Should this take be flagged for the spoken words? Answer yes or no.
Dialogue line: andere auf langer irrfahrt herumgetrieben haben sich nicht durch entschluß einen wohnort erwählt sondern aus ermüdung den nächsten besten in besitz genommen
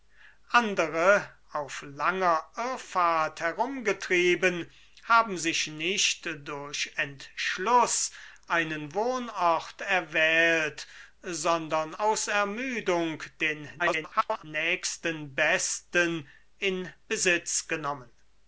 yes